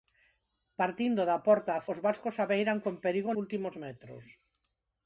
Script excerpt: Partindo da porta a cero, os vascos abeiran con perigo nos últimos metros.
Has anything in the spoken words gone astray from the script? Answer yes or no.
yes